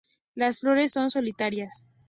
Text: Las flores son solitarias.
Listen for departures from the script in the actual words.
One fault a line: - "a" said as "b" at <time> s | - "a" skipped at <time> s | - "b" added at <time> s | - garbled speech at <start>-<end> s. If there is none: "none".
none